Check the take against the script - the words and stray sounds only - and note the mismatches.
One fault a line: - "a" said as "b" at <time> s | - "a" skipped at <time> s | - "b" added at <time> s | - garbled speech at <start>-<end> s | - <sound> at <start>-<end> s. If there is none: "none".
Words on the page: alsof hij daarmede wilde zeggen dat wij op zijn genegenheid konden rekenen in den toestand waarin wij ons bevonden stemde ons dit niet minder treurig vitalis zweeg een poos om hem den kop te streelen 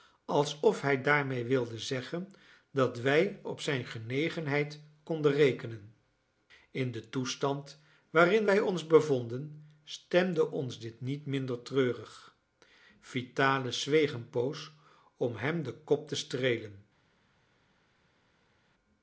none